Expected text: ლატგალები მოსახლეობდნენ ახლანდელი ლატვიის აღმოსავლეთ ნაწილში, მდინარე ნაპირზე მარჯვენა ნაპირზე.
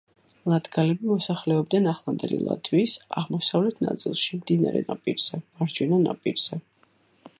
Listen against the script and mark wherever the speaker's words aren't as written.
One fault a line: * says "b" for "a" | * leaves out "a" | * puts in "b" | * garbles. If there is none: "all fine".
all fine